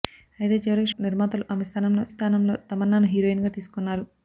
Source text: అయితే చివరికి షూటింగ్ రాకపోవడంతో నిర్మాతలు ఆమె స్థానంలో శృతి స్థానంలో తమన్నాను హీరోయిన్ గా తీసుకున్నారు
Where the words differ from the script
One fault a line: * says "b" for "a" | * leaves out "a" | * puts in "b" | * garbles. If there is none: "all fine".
* leaves out "షూటింగ్ రాకపోవడంతో"
* leaves out "శృతి"